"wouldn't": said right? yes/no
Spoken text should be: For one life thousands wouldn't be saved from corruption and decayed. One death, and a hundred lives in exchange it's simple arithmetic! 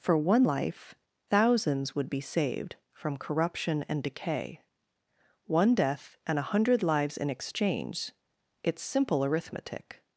no